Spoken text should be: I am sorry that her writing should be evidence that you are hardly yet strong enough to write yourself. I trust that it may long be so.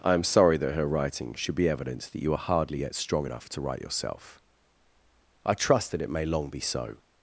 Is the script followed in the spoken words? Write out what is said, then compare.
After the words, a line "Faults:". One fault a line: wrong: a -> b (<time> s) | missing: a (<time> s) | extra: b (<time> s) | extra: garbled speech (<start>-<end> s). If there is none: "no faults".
I am sorry that her writing should be evidence that you are hardly yet strong enough to write yourself. I trust that it may long be so.
Faults:
no faults